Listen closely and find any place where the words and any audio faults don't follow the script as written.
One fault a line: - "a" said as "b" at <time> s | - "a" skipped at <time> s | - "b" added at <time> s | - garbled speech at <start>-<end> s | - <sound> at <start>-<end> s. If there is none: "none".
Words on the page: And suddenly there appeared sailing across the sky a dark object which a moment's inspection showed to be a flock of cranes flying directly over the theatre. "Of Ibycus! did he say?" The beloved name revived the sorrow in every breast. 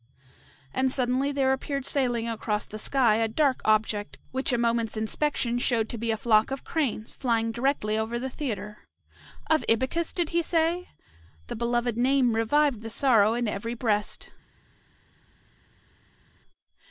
none